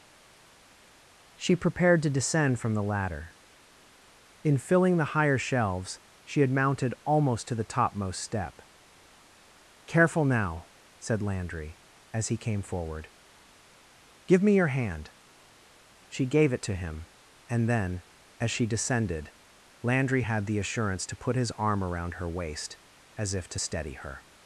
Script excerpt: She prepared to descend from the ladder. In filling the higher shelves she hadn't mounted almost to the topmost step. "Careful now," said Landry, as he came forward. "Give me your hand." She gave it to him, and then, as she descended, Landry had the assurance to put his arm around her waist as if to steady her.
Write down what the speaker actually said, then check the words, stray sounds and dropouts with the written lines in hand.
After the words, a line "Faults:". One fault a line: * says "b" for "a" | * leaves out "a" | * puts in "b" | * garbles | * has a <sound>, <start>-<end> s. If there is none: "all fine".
She prepared to descend from the ladder. In filling the higher shelves she had mounted almost to the topmost step. "Careful now," said Landry, as he came forward. "Give me your hand." She gave it to him, and then, as she descended, Landry had the assurance to put his arm around her waist as if to steady her.
Faults:
* says "had" for "hadn't"